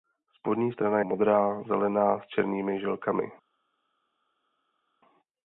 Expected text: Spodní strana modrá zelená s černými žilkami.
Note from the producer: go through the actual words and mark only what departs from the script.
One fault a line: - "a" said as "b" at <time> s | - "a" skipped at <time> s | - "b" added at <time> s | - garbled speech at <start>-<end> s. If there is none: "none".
none